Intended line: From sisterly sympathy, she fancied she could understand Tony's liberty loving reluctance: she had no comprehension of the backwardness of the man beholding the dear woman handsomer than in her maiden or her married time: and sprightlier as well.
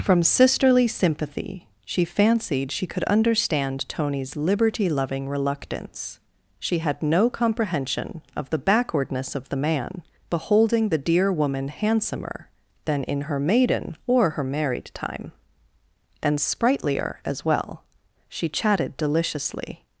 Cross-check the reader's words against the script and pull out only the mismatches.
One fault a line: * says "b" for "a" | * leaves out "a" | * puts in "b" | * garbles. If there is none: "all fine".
* puts in "She chatted deliciously"